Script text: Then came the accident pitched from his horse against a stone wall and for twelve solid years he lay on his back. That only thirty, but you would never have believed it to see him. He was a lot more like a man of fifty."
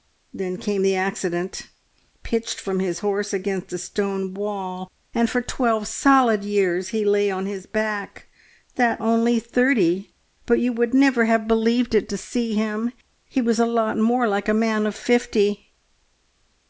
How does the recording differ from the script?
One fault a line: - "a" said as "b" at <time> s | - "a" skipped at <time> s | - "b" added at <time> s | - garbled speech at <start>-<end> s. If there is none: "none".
none